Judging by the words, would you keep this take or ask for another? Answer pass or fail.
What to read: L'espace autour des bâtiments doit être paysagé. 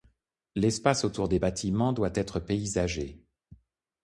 pass